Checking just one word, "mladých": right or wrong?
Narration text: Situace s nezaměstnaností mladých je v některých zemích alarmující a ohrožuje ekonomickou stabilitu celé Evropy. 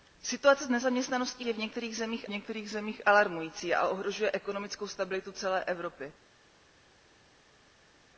wrong